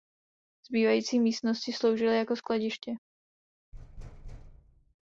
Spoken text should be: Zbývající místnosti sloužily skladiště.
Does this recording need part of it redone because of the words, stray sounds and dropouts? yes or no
yes